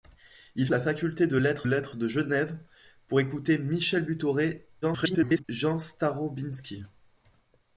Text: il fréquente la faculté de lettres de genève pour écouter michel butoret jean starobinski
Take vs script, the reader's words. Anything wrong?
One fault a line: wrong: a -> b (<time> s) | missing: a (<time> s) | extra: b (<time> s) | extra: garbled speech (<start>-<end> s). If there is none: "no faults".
missing: fréquente (0.7 s)
extra: lettres (1.6 s)
extra: garbled speech (4.8-5.4 s)